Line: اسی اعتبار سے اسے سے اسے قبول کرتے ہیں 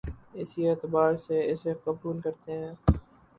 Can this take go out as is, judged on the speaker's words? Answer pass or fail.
fail